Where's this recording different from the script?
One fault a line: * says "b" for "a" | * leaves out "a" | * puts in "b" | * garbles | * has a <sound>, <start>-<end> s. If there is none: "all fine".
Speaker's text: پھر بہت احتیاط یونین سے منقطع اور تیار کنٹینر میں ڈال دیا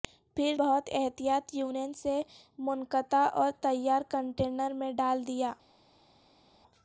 all fine